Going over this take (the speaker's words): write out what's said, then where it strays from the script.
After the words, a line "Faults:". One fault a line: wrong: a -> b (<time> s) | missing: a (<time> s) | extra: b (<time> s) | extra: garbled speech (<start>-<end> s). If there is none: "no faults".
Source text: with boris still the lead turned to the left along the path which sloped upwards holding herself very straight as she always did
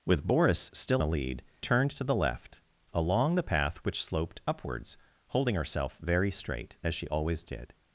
with boris still the lead turned to the left along the path which sloped upwards holding herself very straight as she always did
Faults:
no faults